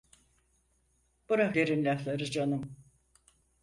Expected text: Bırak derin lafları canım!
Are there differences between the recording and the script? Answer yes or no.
no